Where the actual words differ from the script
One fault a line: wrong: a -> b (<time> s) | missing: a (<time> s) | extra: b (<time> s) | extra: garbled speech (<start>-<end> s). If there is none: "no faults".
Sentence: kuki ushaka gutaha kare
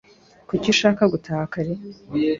no faults